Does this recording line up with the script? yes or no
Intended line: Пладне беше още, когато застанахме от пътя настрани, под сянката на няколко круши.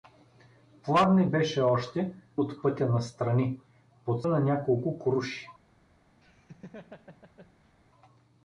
no